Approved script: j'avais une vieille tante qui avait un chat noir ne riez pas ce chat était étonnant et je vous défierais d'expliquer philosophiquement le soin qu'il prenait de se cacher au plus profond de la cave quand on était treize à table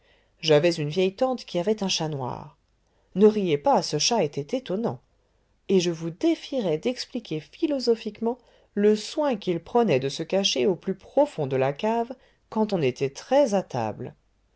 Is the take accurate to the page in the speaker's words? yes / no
yes